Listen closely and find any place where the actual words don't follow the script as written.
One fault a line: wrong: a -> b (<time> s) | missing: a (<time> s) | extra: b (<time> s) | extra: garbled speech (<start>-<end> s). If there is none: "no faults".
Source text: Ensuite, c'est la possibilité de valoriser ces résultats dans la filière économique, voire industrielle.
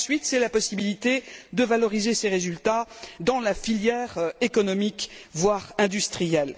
no faults